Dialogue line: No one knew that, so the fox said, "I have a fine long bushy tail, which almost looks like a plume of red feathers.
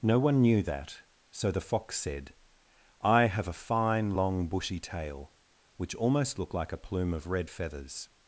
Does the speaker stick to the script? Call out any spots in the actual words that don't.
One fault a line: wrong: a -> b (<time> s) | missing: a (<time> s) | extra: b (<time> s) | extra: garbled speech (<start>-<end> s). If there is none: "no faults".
wrong: looks -> look (6.4 s)